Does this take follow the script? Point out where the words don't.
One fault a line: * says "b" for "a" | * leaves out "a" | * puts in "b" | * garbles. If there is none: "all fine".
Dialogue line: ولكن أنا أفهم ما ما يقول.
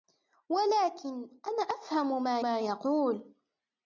all fine